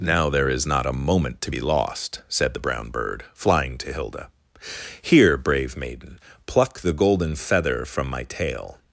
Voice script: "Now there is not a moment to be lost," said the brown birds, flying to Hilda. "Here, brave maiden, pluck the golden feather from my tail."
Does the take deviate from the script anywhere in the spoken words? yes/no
yes